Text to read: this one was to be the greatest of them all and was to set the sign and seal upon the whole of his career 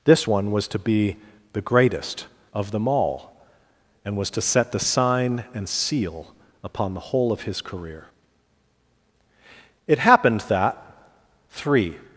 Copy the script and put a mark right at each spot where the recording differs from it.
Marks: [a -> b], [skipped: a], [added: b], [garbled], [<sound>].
this one was to be the greatest of them all and was to set the sign and seal upon the whole of his career [added: it happened that three]